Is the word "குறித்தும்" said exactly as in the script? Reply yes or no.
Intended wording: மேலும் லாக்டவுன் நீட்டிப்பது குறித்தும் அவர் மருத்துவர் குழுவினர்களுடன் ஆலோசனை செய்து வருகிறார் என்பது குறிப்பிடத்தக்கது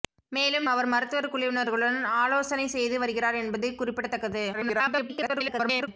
no